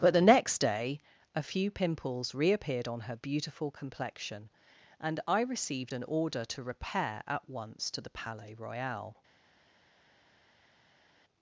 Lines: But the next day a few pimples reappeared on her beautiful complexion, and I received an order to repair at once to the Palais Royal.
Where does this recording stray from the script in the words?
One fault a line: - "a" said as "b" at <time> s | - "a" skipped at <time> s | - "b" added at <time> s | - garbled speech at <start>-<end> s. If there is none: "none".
none